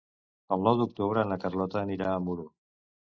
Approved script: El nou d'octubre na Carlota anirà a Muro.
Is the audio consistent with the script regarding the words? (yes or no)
yes